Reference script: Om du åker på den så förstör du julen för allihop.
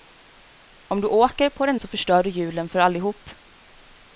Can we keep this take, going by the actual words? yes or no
yes